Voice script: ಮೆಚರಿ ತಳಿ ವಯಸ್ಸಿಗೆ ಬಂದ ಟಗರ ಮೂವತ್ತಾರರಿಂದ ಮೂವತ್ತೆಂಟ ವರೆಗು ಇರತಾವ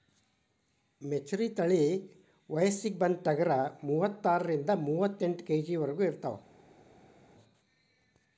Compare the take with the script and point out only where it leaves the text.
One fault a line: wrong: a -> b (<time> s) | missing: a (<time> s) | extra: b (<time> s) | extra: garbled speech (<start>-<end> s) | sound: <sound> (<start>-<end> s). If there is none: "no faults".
extra: ಕೆ.ಜಿ (5.4 s)